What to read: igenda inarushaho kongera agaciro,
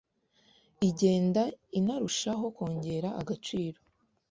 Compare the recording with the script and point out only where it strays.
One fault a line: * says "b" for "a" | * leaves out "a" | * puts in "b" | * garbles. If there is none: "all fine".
all fine